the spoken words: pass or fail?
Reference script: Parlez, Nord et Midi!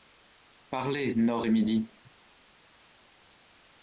pass